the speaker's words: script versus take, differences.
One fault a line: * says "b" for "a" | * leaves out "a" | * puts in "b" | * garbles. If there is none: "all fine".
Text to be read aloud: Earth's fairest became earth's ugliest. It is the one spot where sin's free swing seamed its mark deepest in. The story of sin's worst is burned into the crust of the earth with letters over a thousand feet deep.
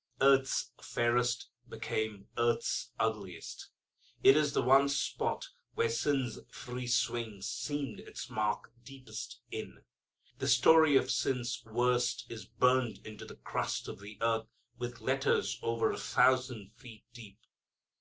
all fine